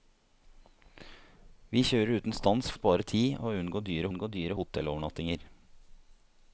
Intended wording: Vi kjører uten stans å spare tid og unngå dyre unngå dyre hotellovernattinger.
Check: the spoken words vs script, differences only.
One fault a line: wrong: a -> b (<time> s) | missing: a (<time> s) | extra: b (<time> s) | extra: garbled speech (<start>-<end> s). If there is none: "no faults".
no faults